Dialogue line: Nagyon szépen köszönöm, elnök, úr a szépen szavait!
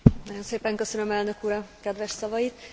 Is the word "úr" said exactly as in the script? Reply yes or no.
yes